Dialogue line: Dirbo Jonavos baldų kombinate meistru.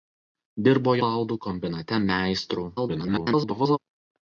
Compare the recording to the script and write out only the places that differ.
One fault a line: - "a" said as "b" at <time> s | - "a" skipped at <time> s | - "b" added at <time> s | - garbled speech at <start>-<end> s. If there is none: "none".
- "Jonavos" skipped at 0.9 s
- garbled speech at 2.8-3.8 s